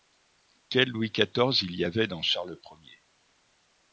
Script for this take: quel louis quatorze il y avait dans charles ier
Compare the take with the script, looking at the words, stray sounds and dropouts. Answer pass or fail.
pass